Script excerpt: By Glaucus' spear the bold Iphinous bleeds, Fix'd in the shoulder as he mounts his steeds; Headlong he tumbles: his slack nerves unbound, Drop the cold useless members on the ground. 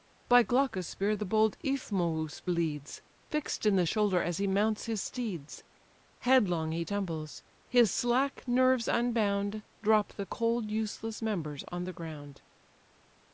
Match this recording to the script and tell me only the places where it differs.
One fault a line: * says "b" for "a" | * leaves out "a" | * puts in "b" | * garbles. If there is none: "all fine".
all fine